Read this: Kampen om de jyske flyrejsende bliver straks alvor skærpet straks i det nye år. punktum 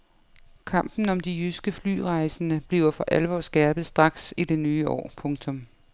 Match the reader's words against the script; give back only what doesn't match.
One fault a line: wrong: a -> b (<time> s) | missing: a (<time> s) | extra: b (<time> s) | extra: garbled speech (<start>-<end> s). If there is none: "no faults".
wrong: straks -> for (2.9 s)